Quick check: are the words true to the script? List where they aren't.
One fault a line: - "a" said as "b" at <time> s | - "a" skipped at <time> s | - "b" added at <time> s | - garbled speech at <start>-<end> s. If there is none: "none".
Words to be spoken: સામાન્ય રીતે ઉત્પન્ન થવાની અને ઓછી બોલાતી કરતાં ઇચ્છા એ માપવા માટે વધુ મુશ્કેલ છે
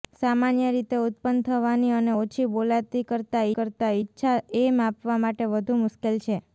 - "કરતાં" added at 3.5 s